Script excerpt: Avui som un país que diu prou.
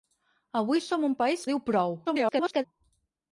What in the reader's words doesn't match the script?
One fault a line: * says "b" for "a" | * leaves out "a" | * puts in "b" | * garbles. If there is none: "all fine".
* leaves out "que"
* garbles